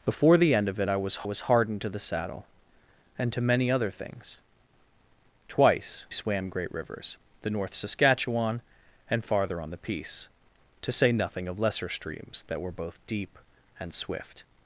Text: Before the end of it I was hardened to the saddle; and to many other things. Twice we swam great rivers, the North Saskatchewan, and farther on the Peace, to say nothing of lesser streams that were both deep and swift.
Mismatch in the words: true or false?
true